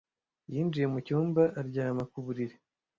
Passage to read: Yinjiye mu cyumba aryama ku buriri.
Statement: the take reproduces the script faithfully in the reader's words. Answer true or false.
true